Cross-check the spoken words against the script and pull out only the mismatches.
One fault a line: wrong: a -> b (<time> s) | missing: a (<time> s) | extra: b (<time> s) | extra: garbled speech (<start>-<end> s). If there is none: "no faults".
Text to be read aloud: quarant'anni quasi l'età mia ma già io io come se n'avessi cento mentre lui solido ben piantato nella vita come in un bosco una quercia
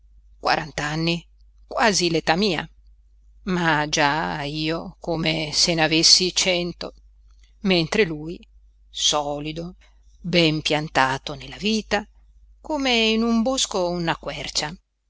missing: io (4.9 s)